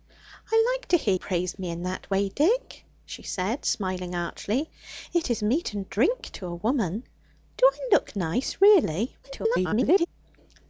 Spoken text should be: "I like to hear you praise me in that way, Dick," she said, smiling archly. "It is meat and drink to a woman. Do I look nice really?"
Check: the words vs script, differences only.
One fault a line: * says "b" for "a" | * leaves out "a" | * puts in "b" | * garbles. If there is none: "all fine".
* leaves out "you"
* garbles